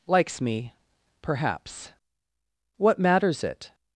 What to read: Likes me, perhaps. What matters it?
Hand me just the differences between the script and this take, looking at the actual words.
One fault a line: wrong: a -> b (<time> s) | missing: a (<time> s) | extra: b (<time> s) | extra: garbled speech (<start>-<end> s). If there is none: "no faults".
no faults